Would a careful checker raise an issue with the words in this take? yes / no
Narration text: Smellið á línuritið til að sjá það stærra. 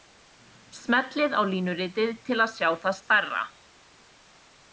no